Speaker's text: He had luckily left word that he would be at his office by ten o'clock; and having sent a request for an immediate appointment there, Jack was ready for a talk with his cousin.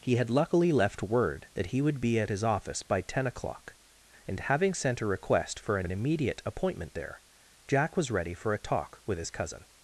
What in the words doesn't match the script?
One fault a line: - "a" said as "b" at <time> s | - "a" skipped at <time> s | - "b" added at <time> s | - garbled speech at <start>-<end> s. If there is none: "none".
- "an" added at 5.8 s